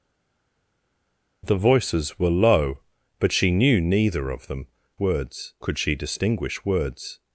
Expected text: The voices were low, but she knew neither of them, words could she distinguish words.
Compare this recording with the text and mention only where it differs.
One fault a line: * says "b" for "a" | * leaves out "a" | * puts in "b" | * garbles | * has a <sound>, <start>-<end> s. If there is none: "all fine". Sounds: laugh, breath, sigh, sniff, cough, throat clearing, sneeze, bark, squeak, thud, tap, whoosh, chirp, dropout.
all fine